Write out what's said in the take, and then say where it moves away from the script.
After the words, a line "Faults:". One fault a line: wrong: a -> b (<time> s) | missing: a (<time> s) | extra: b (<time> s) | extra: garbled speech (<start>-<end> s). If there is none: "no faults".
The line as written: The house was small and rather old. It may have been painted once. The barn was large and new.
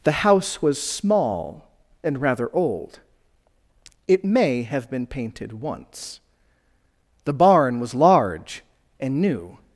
The house was small and rather old. It may have been painted once. The barn was large and new.
Faults:
no faults